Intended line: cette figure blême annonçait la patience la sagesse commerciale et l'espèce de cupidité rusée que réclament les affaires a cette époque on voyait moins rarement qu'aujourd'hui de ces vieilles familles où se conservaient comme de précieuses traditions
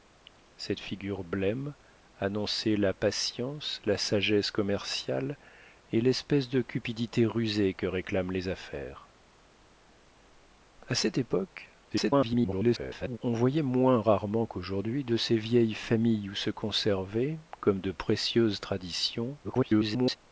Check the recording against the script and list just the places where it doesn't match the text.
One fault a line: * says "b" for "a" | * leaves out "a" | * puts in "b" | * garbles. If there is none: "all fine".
* garbles
* garbles